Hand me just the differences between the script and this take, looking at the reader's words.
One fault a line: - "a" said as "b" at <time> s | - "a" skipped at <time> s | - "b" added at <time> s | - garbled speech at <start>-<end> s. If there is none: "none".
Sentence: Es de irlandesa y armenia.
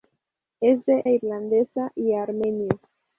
none